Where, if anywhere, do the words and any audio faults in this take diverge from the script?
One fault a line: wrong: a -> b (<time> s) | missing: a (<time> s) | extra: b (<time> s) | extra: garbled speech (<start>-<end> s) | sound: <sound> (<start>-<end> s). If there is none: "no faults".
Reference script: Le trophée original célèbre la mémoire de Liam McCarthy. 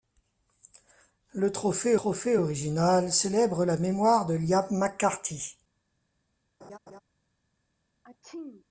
extra: trophée (1.9 s)
sound: laugh (6.6-7.0 s)
sound: sneeze (8.0-8.7 s)